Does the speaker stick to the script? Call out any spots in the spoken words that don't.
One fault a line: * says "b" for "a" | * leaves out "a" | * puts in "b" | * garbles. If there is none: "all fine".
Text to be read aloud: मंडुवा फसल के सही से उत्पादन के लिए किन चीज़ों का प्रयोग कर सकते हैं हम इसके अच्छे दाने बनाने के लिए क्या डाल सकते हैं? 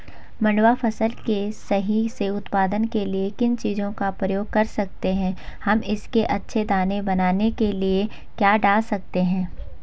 all fine